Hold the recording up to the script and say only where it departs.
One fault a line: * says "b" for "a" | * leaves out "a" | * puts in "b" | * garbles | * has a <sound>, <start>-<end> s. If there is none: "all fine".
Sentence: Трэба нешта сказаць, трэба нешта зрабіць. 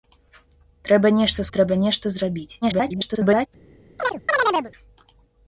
* leaves out "сказаць"
* garbles
* has a chirp, 4.0-4.7 s